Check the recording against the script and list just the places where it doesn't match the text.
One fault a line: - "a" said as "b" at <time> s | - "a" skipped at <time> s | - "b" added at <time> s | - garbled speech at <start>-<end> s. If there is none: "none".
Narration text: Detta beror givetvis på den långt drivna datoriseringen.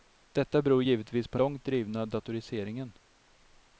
- "den" skipped at 1.4 s